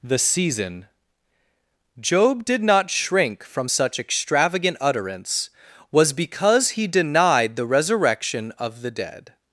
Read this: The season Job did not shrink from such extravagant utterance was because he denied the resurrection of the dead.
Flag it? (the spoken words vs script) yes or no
no